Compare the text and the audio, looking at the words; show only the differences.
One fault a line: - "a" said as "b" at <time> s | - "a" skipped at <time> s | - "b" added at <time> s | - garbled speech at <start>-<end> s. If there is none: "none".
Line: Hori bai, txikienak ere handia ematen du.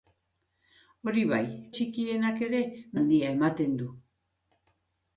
none